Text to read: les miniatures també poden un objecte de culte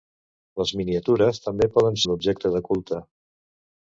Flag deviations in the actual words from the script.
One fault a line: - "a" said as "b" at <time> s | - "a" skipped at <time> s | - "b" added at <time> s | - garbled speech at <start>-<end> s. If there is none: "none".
none